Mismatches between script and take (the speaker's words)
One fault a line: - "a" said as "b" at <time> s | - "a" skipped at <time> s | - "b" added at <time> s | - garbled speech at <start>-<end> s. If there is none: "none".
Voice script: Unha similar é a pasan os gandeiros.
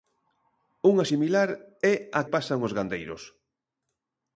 none